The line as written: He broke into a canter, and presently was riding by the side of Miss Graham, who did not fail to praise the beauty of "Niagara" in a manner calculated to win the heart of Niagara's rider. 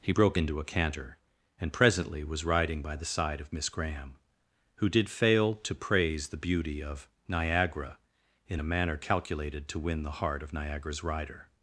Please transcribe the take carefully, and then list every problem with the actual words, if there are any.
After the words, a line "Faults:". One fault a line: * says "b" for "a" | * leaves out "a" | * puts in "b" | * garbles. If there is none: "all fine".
He broke into a canter, and presently was riding by the side of Miss Graham, who did fail to praise the beauty of "Niagara" in a manner calculated to win the heart of Niagara's rider.
Faults:
* leaves out "not"